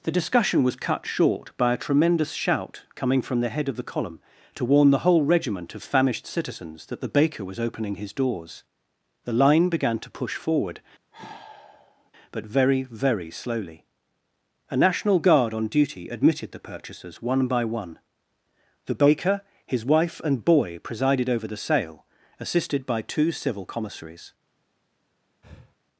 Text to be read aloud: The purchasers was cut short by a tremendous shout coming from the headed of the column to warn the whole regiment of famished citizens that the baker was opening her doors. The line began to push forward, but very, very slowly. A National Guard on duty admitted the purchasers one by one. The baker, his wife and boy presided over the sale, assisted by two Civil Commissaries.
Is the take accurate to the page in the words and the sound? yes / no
no